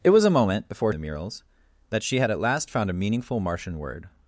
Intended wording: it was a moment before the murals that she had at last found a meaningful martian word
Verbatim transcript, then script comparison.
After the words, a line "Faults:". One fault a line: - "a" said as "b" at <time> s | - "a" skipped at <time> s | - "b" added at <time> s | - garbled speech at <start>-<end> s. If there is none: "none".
it was a moment before the murals that she had at last found a meaningful martian word
Faults:
none